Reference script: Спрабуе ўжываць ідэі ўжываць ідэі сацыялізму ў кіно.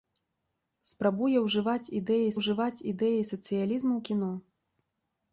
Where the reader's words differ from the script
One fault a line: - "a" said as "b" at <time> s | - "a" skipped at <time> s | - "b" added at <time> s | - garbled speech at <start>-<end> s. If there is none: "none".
none